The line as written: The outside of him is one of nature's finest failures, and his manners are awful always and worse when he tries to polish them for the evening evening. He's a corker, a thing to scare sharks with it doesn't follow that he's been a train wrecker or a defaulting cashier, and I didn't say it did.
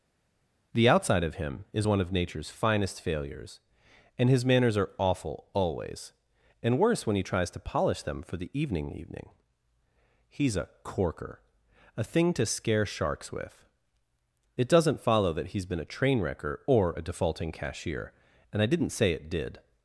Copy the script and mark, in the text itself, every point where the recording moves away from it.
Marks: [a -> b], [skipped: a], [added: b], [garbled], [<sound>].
The outside of him is one of nature's finest failures, and his manners are awful always and worse when he tries to polish them for the evening evening. He's a corker, a thing to scare sharks with it doesn't follow that he's been a train wrecker or a defaulting cashier, and I didn't say it did.